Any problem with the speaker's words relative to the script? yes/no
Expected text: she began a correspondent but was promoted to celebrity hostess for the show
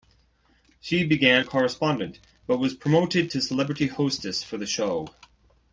no